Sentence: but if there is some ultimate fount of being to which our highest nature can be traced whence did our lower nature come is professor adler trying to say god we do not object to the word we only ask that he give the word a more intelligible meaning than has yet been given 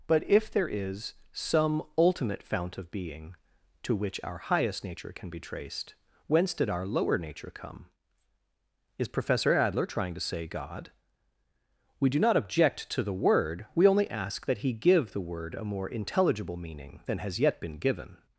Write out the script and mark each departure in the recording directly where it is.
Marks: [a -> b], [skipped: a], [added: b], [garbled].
but if there is some ultimate fount of being to which our highest nature can be traced whence did our lower nature come is professor adler trying to say god we do not object to the word we only ask that he give the word a more intelligible meaning than has yet been given